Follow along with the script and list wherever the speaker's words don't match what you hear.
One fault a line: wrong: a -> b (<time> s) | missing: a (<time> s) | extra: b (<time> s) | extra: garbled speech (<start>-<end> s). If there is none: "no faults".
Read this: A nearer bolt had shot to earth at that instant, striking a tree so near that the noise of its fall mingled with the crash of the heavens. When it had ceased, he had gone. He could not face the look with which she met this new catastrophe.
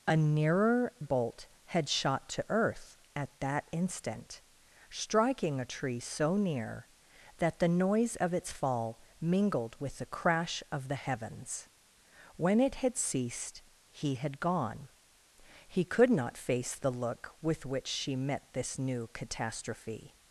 no faults